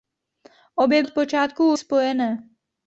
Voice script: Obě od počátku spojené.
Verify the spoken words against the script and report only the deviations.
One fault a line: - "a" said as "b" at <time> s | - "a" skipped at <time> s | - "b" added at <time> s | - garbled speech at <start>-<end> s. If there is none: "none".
none